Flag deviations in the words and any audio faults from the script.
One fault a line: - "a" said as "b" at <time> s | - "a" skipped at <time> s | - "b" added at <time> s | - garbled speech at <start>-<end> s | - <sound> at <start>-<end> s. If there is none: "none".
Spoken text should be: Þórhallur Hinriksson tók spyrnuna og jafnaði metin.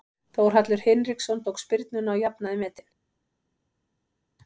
none